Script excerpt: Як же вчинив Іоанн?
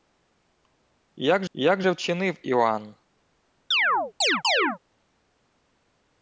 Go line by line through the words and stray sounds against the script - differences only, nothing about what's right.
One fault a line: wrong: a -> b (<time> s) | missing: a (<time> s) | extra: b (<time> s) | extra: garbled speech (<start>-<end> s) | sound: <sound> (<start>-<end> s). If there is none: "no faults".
extra: як (1.5 s)
sound: chirp (3.7-4.8 s)